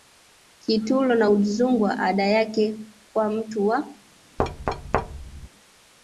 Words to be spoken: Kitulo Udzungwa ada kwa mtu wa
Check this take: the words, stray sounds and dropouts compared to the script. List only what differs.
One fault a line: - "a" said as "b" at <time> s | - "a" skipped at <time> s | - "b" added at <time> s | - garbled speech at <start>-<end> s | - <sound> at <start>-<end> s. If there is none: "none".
- "na" added at 1.1 s
- "yake" added at 2.3 s
- thud at 4.4-5.5 s